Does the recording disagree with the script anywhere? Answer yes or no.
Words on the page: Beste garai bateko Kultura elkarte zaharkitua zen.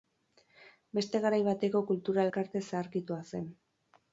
no